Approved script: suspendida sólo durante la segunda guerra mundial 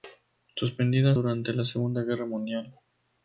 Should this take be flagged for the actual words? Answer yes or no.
yes